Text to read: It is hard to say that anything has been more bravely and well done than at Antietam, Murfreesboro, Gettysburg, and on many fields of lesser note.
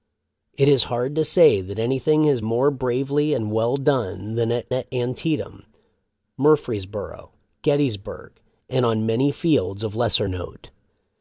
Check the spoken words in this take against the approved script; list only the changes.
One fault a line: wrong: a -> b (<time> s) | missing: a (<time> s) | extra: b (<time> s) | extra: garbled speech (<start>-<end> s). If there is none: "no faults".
missing: been (2.4 s)
extra: at (4.7 s)